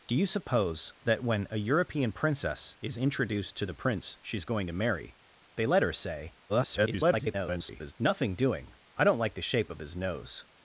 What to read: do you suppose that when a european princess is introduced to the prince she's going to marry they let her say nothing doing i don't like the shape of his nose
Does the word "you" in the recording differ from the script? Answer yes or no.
no